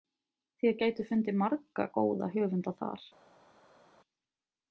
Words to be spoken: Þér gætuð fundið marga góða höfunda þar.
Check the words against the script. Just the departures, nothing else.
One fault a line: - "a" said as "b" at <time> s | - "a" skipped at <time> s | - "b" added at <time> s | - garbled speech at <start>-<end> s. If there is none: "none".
none